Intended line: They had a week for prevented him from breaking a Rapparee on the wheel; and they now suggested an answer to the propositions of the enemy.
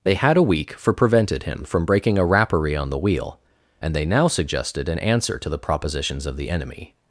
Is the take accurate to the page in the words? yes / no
yes